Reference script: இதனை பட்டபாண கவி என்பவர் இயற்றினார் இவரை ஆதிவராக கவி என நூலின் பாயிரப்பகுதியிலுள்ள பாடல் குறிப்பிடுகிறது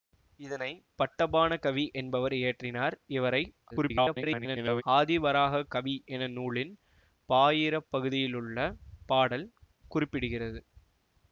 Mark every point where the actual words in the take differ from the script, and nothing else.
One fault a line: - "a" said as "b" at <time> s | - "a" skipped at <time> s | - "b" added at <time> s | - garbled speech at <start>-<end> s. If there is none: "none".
- garbled speech at 3.7-4.8 s